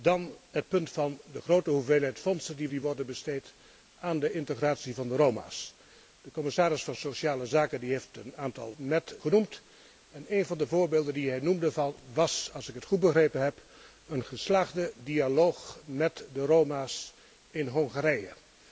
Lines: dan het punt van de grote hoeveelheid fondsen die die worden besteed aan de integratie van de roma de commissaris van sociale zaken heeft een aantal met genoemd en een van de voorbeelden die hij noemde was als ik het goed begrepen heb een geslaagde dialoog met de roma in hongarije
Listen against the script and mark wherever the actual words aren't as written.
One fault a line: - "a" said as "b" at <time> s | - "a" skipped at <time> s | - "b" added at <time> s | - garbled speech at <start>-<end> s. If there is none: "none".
none